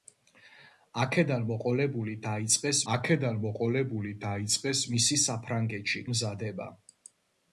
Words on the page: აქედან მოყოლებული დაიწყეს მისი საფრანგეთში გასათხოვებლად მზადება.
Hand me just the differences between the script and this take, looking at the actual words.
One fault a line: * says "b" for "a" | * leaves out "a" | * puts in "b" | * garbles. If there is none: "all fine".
* puts in "აქედან მოყოლებული დაიწყეს"
* leaves out "გასათხოვებლად"